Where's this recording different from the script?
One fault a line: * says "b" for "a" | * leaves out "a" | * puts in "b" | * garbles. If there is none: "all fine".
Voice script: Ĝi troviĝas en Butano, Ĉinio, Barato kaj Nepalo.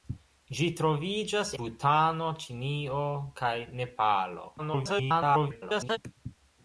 * leaves out "en"
* leaves out "Barato"
* garbles